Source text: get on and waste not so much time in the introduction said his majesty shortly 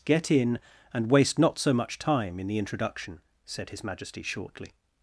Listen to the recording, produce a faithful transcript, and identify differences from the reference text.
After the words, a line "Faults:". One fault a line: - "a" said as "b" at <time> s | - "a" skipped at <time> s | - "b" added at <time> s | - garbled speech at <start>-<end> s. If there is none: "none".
get in and waste not so much time in the introduction said his majesty shortly
Faults:
- "on" said as "in" at 0.3 s